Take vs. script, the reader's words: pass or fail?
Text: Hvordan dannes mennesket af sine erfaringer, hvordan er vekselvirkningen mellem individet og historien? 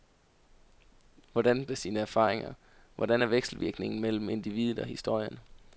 fail